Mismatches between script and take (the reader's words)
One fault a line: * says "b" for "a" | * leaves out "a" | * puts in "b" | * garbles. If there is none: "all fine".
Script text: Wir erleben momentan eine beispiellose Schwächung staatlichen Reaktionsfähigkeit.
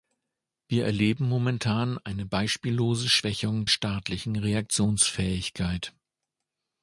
all fine